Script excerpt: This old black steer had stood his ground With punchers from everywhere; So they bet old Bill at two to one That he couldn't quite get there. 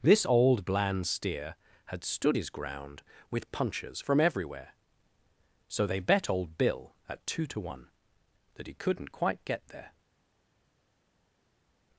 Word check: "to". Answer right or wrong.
right